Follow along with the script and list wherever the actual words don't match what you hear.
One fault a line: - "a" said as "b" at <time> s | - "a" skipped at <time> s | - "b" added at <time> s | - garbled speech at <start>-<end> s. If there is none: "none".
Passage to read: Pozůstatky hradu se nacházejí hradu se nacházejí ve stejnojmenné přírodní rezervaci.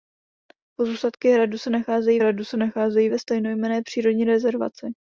none